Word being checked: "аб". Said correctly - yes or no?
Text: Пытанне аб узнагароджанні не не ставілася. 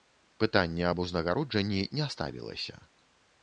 yes